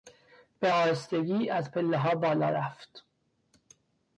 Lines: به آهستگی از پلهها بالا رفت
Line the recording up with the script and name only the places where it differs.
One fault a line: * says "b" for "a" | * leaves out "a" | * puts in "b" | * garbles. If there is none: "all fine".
all fine